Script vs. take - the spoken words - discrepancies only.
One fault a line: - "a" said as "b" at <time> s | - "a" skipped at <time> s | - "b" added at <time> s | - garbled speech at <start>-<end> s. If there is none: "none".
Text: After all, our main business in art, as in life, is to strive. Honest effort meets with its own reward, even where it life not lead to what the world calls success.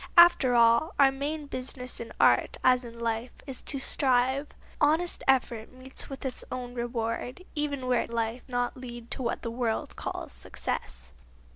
none